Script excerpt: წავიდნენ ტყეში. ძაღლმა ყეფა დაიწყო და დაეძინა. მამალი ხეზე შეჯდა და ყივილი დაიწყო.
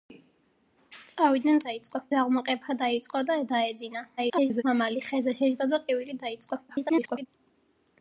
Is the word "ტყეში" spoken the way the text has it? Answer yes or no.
no